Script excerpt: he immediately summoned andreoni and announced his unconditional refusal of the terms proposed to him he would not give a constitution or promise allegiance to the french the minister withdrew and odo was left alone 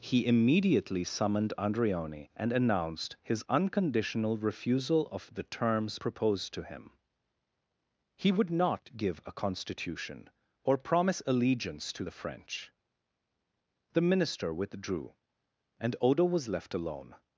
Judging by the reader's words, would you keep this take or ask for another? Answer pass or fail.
pass